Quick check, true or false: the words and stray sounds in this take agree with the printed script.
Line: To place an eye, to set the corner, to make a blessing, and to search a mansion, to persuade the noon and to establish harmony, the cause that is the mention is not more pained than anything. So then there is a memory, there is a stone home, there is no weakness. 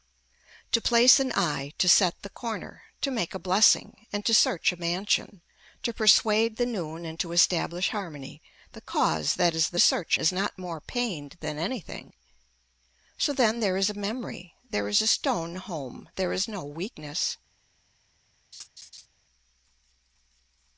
false